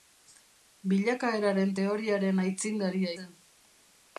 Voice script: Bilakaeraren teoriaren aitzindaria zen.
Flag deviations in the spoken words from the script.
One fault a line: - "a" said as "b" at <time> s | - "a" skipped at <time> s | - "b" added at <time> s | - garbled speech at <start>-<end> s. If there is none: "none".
none